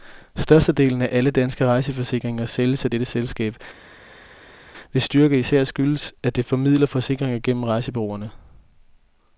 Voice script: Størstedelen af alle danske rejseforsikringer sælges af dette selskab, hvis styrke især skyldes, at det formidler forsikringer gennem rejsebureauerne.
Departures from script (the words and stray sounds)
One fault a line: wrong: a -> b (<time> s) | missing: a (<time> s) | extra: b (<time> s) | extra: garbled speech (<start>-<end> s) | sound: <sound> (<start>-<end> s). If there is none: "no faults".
no faults